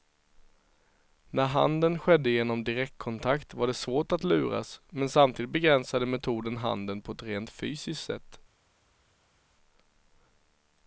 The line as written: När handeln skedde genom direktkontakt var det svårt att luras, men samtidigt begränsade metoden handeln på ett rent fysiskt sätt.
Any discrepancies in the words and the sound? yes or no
no